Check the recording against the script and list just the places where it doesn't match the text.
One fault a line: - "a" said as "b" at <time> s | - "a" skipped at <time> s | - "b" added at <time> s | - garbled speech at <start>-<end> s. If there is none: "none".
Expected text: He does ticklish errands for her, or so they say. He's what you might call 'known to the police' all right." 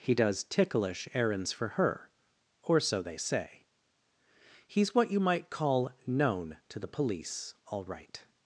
none